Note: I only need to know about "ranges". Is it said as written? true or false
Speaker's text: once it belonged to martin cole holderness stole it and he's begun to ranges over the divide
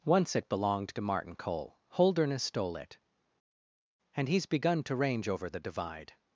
false